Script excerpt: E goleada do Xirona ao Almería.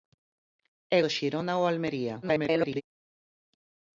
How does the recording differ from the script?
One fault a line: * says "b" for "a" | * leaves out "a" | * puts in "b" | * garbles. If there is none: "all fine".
* leaves out "goleada"
* garbles